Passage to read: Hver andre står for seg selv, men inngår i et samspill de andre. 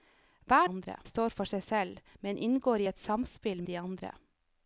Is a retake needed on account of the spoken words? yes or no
no